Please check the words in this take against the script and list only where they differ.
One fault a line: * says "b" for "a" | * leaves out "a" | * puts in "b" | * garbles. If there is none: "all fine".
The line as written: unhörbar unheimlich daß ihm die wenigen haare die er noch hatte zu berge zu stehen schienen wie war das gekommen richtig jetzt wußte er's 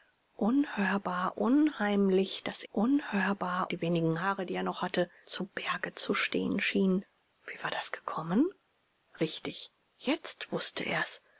* says "unhörbar" for "ihm"